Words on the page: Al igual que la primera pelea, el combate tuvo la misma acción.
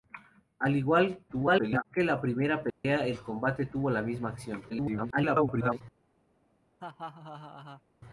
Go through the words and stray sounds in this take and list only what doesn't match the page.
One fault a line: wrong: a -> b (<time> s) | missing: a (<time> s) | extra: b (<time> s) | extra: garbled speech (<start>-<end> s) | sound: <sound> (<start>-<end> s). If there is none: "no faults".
extra: garbled speech (1.3-1.9 s)
sound: dropout (2.7-2.8 s)
extra: garbled speech (4.7-5.8 s)
sound: laugh (6.8-7.8 s)